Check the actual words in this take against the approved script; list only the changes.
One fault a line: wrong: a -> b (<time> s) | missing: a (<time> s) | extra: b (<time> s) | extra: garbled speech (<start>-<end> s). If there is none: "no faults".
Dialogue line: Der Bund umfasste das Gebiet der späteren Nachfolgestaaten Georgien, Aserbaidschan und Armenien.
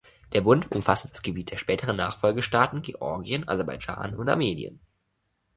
no faults